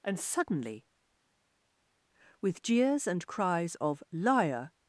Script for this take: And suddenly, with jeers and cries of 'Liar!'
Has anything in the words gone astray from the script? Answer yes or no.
no